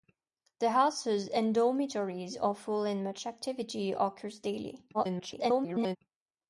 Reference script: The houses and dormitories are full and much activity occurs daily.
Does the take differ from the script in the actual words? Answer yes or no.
yes